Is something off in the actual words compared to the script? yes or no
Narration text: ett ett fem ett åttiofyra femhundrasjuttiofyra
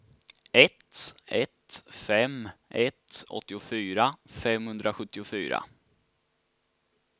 no